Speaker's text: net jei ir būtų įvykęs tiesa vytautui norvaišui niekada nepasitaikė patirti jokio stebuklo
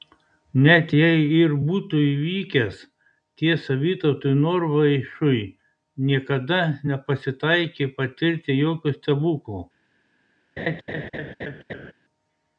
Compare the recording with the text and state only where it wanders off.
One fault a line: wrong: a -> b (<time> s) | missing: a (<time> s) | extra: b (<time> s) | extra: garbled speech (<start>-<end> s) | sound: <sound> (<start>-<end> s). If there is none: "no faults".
sound: laugh (10.6-11.9 s)